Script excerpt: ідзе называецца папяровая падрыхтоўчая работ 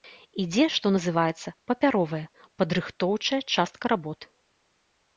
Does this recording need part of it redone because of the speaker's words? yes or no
yes